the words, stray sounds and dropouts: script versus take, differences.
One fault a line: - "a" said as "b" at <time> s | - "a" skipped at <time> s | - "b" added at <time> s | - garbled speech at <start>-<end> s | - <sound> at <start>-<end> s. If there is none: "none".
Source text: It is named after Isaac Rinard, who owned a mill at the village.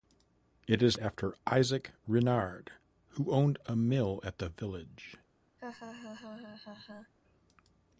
- "named" skipped at 1.0 s
- laugh at 5.6-7.1 s